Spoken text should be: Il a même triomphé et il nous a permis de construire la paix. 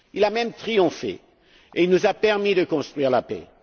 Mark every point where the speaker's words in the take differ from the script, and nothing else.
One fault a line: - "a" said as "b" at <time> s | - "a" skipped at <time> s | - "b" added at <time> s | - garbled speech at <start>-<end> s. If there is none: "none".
none